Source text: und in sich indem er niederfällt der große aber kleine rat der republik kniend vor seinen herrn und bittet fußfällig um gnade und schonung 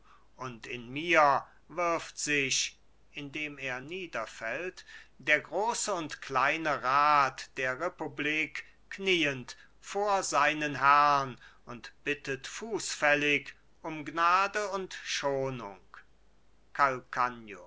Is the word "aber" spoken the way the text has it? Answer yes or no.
no